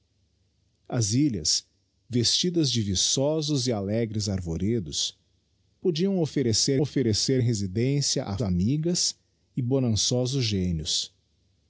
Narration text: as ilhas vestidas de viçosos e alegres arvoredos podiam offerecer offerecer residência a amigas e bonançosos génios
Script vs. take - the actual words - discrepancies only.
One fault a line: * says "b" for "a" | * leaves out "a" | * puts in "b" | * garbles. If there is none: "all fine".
all fine